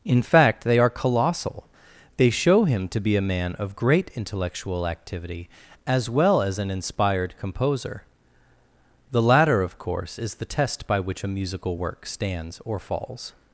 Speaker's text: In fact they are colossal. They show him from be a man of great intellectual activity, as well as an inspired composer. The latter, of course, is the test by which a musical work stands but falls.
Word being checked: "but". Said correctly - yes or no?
no